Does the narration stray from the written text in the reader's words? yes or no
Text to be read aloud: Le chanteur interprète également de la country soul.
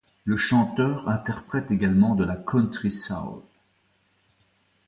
no